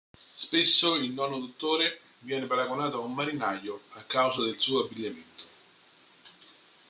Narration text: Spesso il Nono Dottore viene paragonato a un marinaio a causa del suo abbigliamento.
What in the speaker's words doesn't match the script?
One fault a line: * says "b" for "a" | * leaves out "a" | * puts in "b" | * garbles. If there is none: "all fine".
all fine